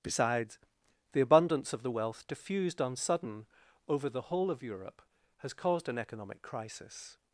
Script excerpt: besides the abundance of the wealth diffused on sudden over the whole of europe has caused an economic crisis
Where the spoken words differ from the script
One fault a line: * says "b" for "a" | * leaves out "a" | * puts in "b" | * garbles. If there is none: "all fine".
all fine